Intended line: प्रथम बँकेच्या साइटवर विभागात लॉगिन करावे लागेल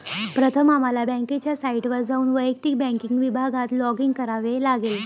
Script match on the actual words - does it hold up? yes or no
no